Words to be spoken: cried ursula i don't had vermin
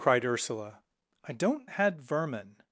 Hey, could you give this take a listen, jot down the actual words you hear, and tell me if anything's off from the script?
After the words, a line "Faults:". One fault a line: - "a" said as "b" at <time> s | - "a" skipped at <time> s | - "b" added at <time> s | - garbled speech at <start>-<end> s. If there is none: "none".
cried ursula i don't had vermin
Faults:
none